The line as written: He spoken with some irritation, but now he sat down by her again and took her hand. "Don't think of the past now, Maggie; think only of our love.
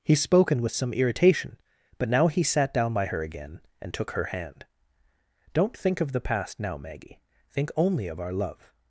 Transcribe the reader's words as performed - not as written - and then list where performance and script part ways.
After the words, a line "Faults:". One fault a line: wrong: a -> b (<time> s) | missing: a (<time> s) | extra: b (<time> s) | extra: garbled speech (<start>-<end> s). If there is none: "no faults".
He spoken with some irritation, but now he sat down by her again and took her hand. "Don't think of the past now, Maggie; think only of our love.
Faults:
no faults